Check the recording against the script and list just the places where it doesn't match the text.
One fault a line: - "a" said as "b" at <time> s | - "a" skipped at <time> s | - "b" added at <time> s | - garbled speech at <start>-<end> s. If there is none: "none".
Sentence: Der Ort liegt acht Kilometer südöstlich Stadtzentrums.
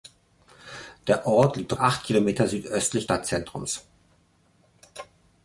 none